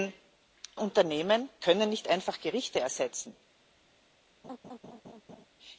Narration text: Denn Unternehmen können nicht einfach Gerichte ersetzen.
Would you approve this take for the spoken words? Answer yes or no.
yes